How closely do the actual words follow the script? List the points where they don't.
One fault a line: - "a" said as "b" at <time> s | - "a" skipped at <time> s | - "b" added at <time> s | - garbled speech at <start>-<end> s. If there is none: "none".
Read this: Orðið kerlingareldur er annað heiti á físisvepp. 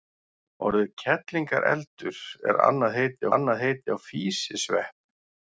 - "annað heiti" added at 3.4 s